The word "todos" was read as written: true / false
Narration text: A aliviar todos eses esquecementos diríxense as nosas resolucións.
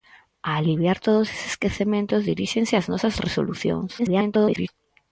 true